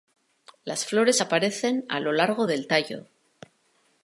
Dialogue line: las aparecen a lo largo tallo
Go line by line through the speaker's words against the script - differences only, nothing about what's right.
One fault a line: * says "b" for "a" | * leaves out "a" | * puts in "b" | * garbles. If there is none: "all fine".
* puts in "flores"
* puts in "del"